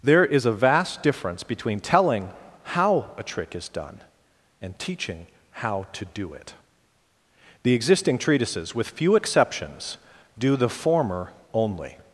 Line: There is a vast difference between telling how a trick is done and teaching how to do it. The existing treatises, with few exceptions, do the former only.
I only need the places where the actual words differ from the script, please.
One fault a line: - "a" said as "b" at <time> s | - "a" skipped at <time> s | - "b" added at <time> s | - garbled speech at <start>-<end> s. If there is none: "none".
none